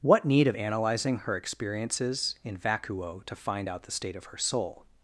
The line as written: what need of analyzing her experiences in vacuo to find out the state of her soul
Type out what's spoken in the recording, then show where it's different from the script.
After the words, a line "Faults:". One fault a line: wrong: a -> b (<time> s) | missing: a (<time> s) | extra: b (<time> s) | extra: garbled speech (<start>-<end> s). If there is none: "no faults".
what need of analyzing her experiences in vacuo to find out the state of her soul
Faults:
no faults